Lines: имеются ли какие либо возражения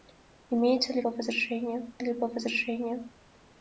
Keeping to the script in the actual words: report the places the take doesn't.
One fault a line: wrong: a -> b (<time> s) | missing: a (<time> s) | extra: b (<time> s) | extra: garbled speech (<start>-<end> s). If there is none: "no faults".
wrong: какие -> возражения (1.1 s)